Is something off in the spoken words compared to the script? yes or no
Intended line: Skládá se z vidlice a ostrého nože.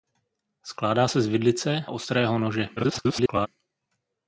yes